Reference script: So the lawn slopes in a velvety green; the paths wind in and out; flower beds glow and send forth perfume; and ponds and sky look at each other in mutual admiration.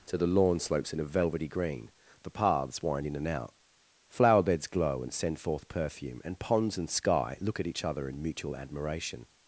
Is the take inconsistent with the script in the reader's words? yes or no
yes